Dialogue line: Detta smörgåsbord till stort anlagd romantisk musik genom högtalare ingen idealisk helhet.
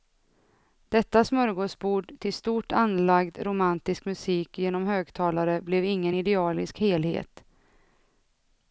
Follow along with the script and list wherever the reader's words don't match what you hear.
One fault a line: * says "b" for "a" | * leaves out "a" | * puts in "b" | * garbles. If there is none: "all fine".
* puts in "blev"